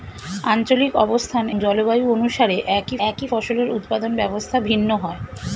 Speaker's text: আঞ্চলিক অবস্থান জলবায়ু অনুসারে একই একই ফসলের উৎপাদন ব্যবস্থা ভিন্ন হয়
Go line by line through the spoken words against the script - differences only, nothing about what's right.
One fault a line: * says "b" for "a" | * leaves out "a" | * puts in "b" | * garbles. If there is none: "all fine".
all fine